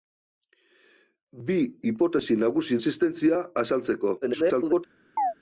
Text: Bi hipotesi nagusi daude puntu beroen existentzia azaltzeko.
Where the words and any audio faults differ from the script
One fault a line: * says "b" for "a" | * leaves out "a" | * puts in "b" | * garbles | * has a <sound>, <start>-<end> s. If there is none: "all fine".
* leaves out "daude puntu beroen"
* garbles
* has a chirp, 5.2-5.3 s